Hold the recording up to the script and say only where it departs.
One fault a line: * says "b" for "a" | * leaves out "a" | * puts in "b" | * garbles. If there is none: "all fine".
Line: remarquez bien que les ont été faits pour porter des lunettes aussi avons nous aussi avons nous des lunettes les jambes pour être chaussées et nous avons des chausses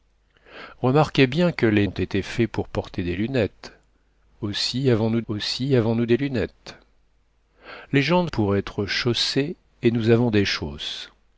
all fine